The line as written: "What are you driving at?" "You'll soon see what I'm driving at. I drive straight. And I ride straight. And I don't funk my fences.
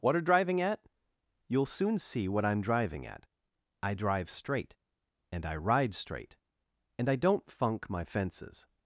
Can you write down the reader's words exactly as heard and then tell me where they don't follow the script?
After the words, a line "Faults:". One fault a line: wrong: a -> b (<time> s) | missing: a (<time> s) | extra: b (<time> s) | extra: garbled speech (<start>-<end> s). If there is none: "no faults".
"What are driving at?" "You'll soon see what I'm driving at. I drive straight. And I ride straight. And I don't funk my fences.
Faults:
missing: you (0.2 s)